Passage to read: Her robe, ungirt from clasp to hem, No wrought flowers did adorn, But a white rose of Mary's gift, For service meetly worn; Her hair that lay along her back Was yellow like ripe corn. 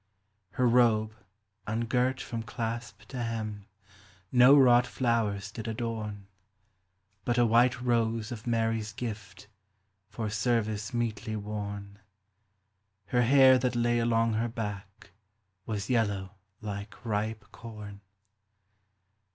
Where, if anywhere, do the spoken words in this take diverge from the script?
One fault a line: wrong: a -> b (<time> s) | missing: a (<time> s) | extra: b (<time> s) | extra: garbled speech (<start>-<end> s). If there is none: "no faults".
no faults